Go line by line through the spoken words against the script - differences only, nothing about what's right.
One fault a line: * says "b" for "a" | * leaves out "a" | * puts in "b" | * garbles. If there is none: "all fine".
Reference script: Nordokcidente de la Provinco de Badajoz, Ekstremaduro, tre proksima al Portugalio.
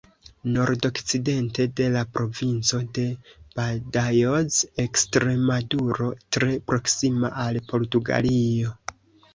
all fine